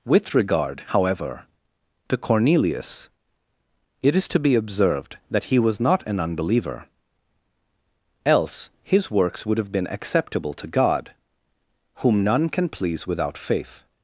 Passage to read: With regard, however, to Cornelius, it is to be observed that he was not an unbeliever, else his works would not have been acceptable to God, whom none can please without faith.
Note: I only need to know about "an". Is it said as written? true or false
true